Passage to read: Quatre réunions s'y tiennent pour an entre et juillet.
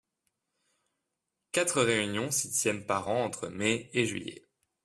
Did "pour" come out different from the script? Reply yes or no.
yes